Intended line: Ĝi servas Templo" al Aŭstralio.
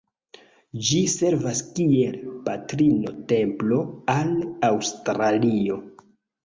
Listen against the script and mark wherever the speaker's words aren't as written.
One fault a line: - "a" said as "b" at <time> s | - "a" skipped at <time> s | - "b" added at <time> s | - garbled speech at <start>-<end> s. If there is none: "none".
- "kiel Patrino" added at 1.8 s